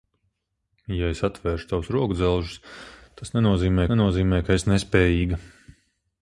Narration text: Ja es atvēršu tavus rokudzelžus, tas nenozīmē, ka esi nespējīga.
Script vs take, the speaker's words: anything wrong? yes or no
yes